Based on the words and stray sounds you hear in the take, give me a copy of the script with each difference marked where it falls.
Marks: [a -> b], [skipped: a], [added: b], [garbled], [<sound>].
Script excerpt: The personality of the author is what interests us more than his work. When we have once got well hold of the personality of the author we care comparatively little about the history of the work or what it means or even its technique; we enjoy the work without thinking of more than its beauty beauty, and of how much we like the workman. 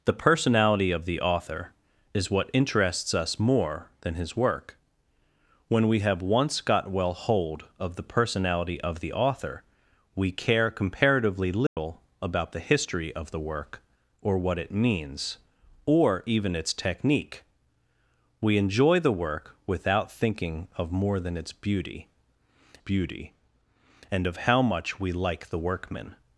The personality of the author is what interests us more than his work. When we have once got well hold of the personality of the author we care comparatively little [dropout] about the history of the work or what it means or even its technique; we enjoy the work without thinking of more than its beauty beauty, and of how much we like the workman.